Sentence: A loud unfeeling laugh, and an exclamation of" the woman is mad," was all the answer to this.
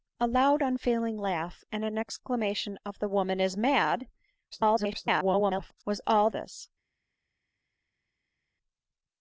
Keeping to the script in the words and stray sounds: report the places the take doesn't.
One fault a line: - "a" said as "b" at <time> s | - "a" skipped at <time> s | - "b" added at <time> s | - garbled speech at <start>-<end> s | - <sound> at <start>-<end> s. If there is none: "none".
- garbled speech at 4.5-5.8 s
- "the answer to" skipped at 6.3 s